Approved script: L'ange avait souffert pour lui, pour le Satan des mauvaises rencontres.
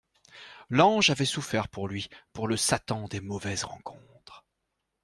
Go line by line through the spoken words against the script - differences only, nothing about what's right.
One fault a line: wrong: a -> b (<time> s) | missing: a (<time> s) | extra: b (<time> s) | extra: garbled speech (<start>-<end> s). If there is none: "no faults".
no faults